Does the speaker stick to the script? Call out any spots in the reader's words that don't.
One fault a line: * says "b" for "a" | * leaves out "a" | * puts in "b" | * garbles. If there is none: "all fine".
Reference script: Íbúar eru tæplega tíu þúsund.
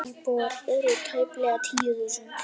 all fine